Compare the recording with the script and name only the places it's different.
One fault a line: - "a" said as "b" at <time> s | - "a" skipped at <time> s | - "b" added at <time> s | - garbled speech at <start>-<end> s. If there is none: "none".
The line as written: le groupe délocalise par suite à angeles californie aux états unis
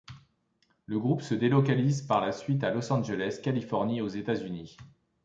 - "se" added at 1.2 s
- "la" added at 2.2 s
- "los" added at 2.7 s